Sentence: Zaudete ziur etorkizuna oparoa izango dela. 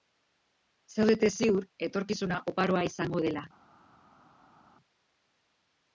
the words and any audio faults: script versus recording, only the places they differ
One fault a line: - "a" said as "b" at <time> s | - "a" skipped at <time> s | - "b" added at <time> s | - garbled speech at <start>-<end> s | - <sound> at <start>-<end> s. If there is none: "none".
none